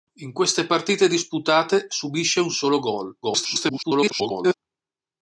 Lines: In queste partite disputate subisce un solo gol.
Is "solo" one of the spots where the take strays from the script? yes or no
no